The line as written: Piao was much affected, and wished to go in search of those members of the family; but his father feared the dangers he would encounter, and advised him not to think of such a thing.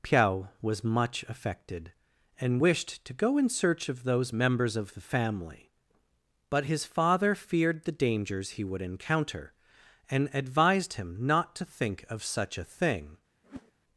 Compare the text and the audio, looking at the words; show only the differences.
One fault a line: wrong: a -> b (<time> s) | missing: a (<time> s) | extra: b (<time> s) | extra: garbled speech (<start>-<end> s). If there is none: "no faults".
no faults